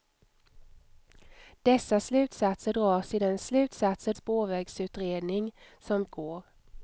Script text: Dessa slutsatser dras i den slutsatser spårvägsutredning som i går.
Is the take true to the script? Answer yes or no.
yes